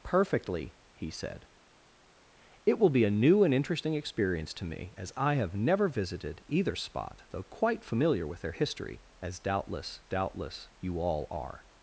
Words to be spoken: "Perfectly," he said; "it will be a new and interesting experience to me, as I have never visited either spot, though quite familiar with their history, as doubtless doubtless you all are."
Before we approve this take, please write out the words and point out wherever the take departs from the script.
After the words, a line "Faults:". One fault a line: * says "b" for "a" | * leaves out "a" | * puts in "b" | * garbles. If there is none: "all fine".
"Perfectly," he said; "it will be a new and interesting experience to me, as I have never visited either spot, though quite familiar with their history, as doubtless doubtless you all are."
Faults:
all fine